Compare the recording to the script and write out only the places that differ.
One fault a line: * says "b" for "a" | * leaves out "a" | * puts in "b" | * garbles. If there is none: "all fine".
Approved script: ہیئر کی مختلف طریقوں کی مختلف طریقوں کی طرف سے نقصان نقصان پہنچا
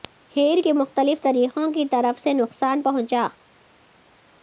* leaves out "مختلف طریقوں کی"
* leaves out "نقصان"